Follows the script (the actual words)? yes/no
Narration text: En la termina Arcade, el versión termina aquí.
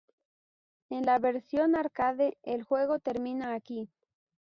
no